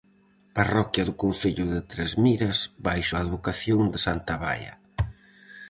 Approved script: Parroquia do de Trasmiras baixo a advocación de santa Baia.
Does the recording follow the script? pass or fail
fail